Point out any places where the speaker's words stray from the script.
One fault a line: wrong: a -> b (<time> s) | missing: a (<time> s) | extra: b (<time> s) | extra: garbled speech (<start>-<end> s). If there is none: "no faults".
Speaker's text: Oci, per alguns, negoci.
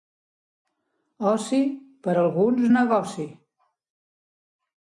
no faults